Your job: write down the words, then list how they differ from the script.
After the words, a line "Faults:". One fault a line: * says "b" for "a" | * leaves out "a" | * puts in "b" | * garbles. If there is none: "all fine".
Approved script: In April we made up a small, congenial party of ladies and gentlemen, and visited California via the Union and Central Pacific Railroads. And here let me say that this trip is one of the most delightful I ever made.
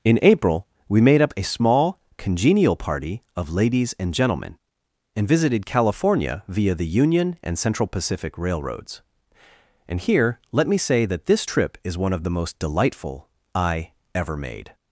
In April we made up a small, congenial party of ladies and gentlemen, and visited California via the Union and Central Pacific Railroads. And here let me say that this trip is one of the most delightful I ever made.
Faults:
all fine